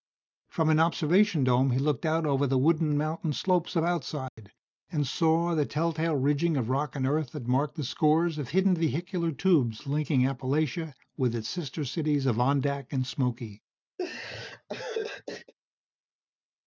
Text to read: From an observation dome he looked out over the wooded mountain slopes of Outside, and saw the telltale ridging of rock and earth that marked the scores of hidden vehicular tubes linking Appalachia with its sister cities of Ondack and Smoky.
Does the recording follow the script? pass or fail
pass